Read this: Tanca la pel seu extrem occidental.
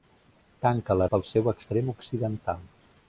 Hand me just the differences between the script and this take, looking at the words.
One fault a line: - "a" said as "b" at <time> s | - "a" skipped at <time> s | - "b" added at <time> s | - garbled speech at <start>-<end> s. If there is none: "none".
none